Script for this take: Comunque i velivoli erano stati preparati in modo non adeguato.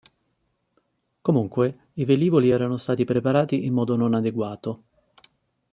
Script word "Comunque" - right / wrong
right